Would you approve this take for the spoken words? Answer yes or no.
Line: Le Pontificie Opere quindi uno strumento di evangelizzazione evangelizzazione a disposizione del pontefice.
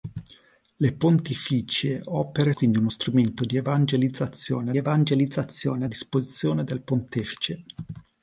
yes